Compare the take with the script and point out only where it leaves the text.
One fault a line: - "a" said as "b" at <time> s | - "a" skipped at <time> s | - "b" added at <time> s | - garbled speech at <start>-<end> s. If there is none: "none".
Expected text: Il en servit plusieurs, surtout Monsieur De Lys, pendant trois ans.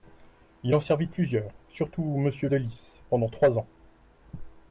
none